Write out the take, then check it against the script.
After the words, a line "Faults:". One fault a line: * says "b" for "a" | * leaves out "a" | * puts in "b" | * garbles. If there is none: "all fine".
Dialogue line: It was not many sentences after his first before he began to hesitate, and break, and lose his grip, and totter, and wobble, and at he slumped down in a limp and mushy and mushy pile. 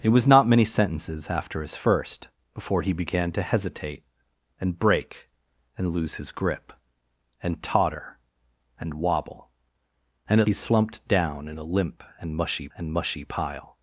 It was not many sentences after his first before he began to hesitate, and break, and lose his grip, and totter, and wobble, and at he slumped down in a limp and mushy and mushy pile.
Faults:
all fine